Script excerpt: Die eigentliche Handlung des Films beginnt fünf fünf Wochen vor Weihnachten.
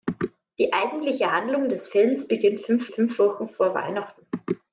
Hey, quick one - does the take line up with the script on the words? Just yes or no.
yes